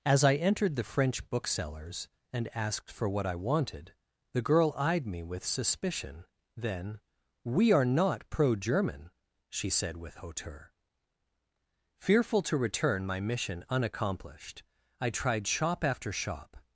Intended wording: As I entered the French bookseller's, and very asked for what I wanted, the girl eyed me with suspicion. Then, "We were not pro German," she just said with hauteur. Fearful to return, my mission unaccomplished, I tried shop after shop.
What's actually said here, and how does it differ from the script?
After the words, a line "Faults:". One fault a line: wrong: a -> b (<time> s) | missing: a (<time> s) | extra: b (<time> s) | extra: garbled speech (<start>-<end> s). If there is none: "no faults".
As I entered the French bookseller's, and asked for what I wanted, the girl eyed me with suspicion. Then, "We are not pro German," she said with hauteur. Fearful to return, my mission unaccomplished, I tried shop after shop.
Faults:
missing: very (2.5 s)
wrong: were -> are (7.7 s)
missing: just (9.7 s)